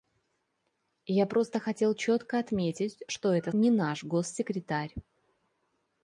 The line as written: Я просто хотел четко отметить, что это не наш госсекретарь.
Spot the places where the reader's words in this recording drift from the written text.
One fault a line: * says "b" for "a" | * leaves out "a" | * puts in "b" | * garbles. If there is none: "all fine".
all fine